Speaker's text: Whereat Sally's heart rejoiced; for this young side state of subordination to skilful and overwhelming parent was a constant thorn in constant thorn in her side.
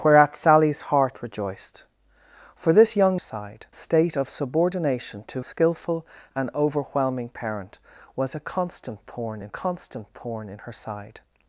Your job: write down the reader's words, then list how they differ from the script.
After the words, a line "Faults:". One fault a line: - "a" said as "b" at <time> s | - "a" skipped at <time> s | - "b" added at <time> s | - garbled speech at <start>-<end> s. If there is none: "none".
Whereat Sally's heart rejoiced; for this young side state of subordination to skilful and overwhelming parent was a constant thorn in constant thorn in her side.
Faults:
none